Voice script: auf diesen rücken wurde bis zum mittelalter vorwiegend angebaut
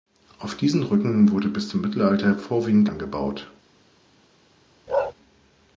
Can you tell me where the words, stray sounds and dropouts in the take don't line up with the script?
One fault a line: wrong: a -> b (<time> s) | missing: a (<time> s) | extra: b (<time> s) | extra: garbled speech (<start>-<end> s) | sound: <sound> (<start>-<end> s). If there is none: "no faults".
sound: bark (4.9-5.1 s)